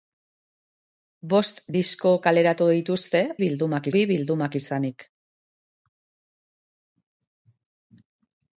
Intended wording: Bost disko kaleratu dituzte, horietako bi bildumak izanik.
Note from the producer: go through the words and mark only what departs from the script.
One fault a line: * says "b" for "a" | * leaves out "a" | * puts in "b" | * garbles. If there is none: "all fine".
* says "bildumak" for "horietako"